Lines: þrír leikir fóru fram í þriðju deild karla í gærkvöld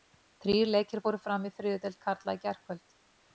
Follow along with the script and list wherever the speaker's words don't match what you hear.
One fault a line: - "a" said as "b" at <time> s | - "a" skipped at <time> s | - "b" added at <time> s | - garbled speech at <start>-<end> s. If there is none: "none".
none